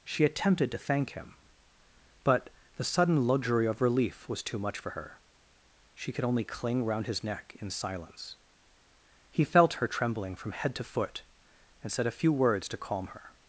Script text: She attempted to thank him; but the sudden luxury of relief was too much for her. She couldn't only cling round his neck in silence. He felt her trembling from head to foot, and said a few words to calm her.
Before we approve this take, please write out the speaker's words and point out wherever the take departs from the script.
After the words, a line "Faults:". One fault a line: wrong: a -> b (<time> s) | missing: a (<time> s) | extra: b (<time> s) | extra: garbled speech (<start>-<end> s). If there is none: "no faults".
She attempted to thank him; but the sudden luxury of relief was too much for her. She could only cling round his neck in silence. He felt her trembling from head to foot, and said a few words to calm her.
Faults:
wrong: couldn't -> could (6.1 s)